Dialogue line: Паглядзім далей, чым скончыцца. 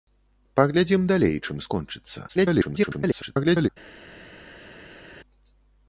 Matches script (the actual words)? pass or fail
fail